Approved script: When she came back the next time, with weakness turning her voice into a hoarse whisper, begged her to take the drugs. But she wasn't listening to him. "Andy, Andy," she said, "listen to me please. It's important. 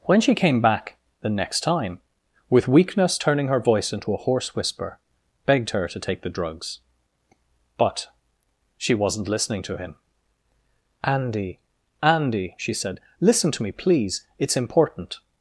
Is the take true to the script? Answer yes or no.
yes